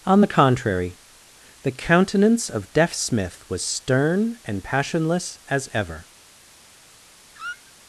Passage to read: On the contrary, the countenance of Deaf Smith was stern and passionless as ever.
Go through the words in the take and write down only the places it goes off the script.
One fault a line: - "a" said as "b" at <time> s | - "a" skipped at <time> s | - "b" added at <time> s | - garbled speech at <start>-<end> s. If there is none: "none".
none